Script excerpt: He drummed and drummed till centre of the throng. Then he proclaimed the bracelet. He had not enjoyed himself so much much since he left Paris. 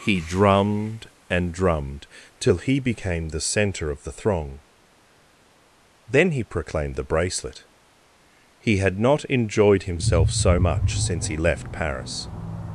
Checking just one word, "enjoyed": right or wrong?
right